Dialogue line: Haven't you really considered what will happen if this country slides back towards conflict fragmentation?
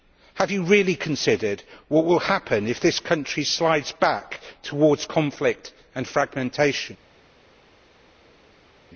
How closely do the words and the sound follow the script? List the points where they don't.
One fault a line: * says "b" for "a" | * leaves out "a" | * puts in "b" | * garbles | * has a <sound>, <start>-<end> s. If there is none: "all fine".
* says "Have" for "Haven't"
* puts in "and"